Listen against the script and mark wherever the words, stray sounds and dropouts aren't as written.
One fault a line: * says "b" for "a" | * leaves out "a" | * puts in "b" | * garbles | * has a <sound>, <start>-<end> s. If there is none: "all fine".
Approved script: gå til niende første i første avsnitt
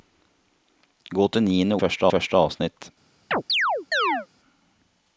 * has a chirp, 3.3-4.3 s